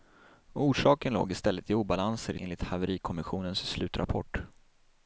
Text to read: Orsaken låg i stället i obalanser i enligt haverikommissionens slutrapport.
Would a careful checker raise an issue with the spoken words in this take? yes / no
no